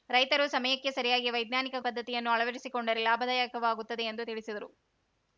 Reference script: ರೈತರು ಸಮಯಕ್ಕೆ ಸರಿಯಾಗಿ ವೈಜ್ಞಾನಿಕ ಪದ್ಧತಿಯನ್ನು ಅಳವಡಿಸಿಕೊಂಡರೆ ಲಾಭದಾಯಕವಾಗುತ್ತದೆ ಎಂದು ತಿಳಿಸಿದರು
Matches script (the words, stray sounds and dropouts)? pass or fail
pass